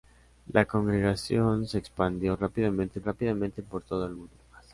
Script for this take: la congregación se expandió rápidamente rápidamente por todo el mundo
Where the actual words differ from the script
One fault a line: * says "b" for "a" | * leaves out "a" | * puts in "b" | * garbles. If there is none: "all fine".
all fine